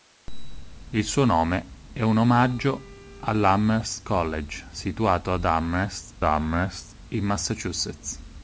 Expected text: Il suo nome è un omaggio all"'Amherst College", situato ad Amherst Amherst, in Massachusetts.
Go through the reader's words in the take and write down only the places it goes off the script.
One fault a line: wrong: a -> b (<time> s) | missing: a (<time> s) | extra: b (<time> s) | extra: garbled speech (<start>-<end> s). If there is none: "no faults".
no faults